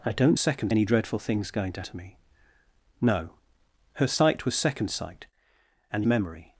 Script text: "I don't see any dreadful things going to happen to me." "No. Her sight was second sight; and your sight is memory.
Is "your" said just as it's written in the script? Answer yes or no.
no